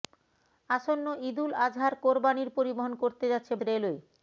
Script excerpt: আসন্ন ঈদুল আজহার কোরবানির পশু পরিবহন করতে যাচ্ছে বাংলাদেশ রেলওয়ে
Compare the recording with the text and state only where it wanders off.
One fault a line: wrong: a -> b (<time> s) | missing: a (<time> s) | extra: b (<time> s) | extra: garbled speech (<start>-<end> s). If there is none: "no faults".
missing: পশু (2.5 s)
missing: বাংলাদেশ (3.5 s)